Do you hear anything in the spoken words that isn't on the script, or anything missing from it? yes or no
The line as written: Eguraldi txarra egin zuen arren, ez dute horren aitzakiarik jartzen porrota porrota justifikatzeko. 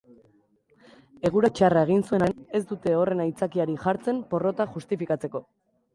yes